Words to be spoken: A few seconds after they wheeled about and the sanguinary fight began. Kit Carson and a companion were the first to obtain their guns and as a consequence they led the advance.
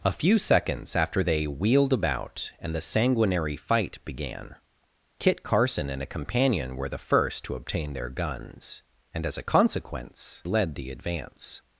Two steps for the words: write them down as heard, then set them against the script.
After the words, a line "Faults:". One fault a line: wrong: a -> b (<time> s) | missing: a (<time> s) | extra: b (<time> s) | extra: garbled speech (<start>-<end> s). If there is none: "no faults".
A few seconds after they wheeled about and the sanguinary fight began. Kit Carson and a companion were the first to obtain their guns and as a consequence led the advance.
Faults:
missing: they (10.4 s)